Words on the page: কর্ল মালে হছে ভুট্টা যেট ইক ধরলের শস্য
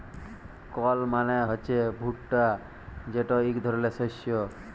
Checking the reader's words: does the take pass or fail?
pass